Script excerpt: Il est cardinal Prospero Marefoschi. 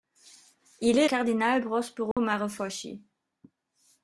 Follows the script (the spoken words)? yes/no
yes